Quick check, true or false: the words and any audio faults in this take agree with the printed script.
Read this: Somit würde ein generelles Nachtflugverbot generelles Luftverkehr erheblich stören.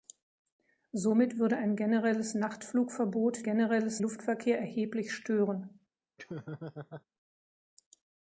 false